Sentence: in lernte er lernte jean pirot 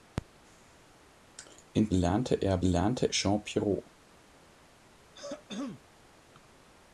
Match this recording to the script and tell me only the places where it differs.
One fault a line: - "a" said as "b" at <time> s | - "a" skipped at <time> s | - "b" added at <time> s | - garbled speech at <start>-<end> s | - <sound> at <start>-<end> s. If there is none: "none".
- throat clearing at 5.1-5.8 s